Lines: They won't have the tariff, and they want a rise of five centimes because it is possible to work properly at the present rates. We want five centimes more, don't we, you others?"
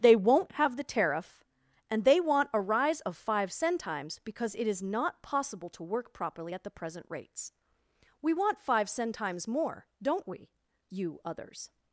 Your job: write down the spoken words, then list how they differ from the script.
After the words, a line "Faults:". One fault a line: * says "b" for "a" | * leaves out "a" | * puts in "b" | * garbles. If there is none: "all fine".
They won't have the tariff, and they want a rise of five centimes because it is not possible to work properly at the present rates. We want five centimes more, don't we, you others?"
Faults:
* puts in "not"